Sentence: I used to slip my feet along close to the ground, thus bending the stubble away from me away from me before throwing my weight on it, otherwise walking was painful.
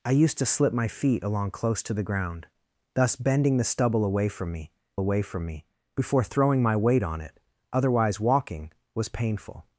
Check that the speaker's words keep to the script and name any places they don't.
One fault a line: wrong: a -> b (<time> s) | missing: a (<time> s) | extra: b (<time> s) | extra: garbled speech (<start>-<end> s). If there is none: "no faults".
no faults